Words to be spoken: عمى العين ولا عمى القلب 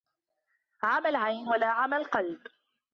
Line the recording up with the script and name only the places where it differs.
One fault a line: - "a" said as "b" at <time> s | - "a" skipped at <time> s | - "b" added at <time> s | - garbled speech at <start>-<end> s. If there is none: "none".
none